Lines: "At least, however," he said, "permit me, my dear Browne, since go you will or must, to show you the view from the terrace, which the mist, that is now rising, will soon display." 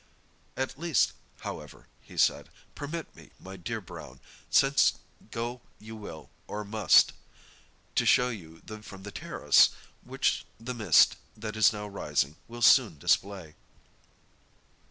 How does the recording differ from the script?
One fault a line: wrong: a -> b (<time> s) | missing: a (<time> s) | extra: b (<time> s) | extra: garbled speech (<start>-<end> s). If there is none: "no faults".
missing: view (8.8 s)